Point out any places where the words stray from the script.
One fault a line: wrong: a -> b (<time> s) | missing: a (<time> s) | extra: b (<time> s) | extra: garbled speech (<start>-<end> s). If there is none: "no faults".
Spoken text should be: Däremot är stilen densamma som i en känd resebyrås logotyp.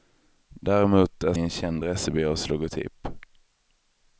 missing: stilen densamma som (1.3 s)